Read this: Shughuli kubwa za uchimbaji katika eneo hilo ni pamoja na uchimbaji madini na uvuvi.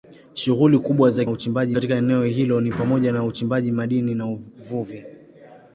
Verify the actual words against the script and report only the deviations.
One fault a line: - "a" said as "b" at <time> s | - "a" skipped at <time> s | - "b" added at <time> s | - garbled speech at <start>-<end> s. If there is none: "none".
none